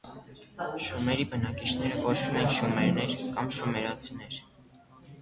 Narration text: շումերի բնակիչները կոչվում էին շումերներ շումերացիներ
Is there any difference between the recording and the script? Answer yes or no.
yes